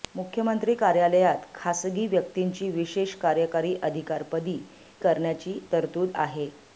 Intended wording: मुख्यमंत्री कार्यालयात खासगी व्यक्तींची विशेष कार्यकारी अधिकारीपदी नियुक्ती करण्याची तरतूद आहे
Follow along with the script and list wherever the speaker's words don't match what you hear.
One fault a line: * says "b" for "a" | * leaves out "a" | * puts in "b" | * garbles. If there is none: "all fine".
* leaves out "नियुक्ती"